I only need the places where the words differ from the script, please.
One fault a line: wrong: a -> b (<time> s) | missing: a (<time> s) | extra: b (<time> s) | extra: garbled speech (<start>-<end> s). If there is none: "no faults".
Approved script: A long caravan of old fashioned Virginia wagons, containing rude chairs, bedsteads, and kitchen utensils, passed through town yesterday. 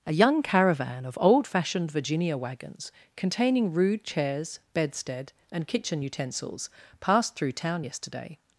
wrong: long -> young (0.1 s)
wrong: bedsteads -> bedstead (4.7 s)